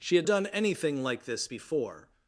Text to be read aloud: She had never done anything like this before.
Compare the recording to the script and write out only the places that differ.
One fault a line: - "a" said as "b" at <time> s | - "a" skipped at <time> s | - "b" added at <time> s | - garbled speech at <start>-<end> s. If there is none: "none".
- "never" skipped at 0.3 s